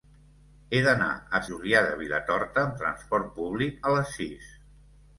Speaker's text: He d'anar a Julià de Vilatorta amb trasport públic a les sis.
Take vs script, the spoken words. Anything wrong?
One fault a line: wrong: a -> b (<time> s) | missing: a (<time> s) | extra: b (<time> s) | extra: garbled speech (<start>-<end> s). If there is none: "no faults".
no faults